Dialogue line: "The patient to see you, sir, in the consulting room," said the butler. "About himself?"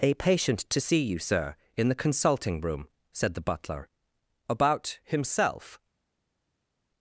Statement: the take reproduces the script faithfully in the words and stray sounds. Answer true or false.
false